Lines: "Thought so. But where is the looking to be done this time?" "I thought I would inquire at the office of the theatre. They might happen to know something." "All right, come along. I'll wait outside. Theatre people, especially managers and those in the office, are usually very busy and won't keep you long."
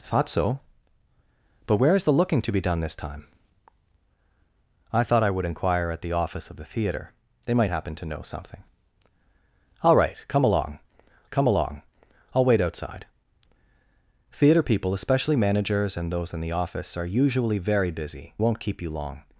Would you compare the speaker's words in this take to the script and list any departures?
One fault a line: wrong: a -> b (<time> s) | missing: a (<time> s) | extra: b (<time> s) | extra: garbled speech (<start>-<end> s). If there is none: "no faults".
extra: come along (11.3 s)
missing: and (18.3 s)